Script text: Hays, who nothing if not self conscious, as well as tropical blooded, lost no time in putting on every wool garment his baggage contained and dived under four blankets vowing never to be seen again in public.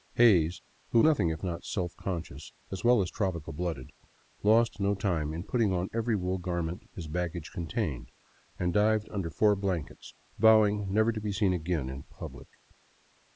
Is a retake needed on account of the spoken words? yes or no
no